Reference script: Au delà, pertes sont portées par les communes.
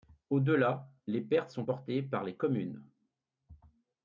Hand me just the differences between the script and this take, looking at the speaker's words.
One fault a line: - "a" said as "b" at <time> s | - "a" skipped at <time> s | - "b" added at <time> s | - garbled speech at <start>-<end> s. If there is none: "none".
- "les" added at 1.1 s